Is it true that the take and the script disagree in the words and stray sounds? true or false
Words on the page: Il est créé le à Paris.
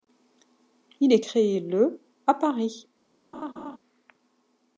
true